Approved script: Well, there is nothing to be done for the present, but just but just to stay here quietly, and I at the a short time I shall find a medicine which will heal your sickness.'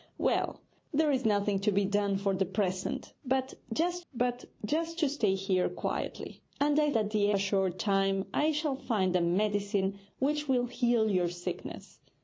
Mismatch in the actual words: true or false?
false